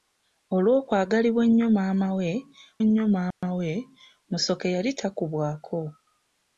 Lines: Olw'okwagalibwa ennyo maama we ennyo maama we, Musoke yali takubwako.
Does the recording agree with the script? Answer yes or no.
yes